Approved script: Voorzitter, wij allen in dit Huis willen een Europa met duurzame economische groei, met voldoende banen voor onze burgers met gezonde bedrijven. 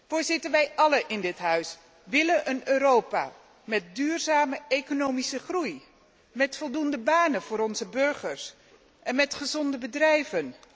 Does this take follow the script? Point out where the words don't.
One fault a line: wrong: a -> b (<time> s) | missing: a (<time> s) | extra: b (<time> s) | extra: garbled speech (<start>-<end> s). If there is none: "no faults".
extra: en (9.0 s)